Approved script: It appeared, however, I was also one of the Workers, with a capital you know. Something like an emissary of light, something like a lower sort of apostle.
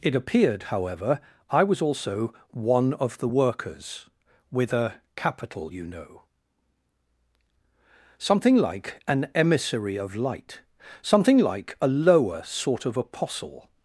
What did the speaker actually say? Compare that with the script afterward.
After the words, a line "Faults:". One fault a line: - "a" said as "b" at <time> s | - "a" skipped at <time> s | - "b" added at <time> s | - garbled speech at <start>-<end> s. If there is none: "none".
It appeared, however, I was also one of the Workers, with a capital you know. Something like an emissary of light, something like a lower sort of apostle.
Faults:
none